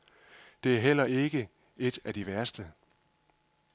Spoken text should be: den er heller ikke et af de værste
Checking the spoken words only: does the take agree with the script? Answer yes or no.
no